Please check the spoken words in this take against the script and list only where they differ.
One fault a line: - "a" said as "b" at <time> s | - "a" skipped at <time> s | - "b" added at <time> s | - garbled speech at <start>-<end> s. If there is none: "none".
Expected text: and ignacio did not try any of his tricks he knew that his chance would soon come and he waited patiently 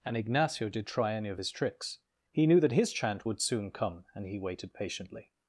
- "not" skipped at 0.9 s
- "chance" said as "chant" at 2.9 s